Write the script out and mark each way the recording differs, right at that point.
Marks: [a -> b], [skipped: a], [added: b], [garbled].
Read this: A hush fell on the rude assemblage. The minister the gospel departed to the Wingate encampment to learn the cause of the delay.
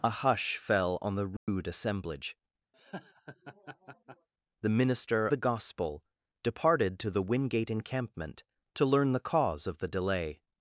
A hush fell on the rude assemblage. The minister the gospel departed to the Wingate encampment to learn the cause of the delay.